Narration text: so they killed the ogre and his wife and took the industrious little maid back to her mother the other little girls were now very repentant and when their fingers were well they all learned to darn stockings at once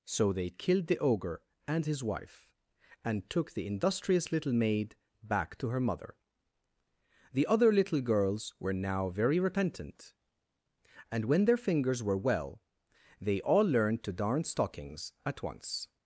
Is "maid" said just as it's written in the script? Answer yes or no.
yes